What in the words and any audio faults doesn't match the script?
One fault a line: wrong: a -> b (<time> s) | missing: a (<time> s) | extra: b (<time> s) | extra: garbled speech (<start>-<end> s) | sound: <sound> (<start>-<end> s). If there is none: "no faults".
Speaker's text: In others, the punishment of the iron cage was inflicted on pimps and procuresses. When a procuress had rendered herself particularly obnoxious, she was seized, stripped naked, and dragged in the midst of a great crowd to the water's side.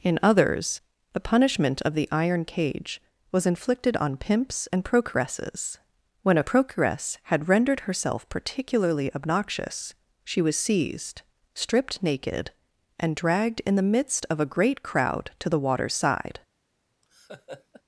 sound: laugh (17.0-17.8 s)